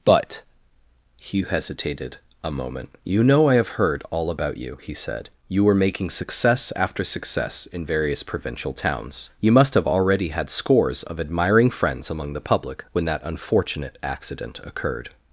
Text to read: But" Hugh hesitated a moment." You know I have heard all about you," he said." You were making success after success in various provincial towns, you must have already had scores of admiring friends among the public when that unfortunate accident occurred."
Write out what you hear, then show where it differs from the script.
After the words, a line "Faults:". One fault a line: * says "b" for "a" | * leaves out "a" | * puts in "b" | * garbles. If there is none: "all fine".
But" Hugh hesitated a moment." You know I have heard all about you," he said." You were making success after success in various provincial towns, you must have already had scores of admiring friends among the public when that unfortunate accident occurred."
Faults:
all fine